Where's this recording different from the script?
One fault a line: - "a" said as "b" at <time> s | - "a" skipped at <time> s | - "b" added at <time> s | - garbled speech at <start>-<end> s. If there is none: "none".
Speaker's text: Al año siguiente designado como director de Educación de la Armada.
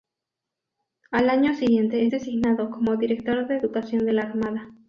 none